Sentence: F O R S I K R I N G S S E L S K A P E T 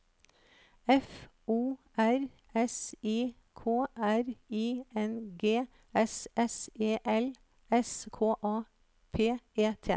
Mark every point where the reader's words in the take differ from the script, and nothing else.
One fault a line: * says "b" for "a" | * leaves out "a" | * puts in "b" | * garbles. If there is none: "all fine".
all fine